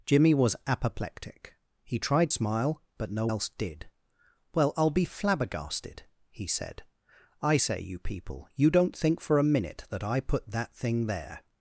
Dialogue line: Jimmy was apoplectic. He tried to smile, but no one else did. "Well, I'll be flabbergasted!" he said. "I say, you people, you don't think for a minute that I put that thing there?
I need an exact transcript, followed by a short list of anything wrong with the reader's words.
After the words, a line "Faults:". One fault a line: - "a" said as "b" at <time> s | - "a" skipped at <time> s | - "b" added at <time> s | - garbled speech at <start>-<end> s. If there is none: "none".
Jimmy was apoplectic. He tried smile, but no else did. "Well, I'll be flabbergasted!" he said. "I say, you people, you don't think for a minute that I put that thing there?
Faults:
- "to" skipped at 2.3 s
- "one" skipped at 3.3 s